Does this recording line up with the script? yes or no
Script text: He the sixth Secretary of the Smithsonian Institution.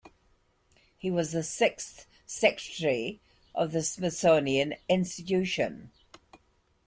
no